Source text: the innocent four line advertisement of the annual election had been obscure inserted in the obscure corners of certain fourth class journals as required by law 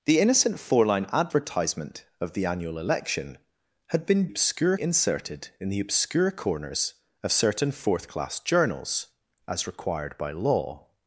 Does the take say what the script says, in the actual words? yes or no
yes